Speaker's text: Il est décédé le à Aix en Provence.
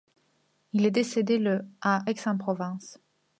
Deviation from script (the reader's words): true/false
false